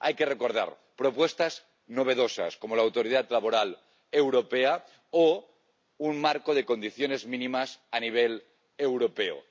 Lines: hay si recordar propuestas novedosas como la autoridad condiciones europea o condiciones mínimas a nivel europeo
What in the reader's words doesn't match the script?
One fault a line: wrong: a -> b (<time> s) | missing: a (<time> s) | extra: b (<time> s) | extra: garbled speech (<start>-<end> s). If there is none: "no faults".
wrong: si -> que (0.1 s)
wrong: condiciones -> laboral (3.3 s)
extra: un marco de (6.0 s)